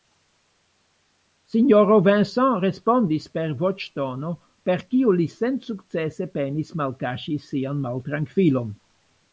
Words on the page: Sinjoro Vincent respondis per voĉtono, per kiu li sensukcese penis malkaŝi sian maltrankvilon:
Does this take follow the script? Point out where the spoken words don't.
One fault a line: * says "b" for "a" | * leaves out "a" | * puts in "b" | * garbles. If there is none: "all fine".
all fine